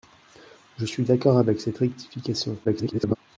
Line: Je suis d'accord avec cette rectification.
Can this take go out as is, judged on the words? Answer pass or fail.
fail